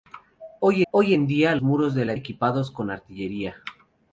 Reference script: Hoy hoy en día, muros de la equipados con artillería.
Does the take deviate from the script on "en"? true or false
false